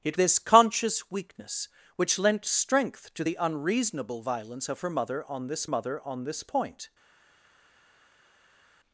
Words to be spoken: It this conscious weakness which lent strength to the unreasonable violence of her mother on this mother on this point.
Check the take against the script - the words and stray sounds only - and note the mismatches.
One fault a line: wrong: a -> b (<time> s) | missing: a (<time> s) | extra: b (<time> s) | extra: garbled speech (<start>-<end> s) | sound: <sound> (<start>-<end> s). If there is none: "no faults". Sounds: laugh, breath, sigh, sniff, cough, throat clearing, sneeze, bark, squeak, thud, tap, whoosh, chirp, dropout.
no faults